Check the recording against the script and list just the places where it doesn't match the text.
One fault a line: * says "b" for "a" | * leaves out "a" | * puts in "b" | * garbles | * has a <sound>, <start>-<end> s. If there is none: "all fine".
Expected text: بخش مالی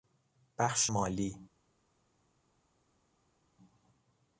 all fine